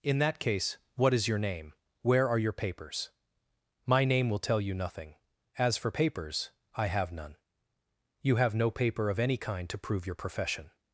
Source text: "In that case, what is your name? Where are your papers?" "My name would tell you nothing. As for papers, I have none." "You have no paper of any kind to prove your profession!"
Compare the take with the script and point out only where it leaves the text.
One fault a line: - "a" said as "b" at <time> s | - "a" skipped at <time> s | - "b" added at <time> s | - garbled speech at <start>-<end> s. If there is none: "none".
- "would" said as "will" at 4.3 s